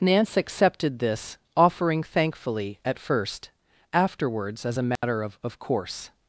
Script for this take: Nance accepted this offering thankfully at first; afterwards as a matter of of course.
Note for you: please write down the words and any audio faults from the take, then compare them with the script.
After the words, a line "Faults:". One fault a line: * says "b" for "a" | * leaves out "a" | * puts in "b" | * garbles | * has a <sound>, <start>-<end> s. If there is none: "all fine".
Nance accepted this offering thankfully at first; afterwards as a matter of of course.
Faults:
* has a dropout, 5.0-5.0 s